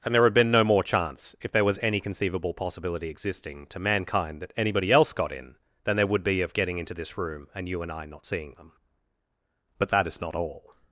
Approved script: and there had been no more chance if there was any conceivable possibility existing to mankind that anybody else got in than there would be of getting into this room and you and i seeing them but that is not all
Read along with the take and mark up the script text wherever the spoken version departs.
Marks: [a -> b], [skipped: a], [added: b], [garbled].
and there had been no more chance if there was any conceivable possibility existing to mankind that anybody else got in than there would be of getting into this room and you and i [added: not] seeing them but that is not all